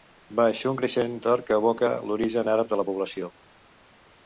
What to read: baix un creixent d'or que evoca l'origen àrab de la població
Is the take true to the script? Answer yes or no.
yes